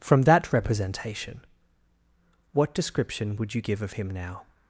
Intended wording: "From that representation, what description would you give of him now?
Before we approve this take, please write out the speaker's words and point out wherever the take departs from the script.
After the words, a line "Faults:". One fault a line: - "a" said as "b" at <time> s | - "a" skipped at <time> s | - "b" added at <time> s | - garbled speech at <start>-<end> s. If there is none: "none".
"From that representation, what description would you give of him now?
Faults:
none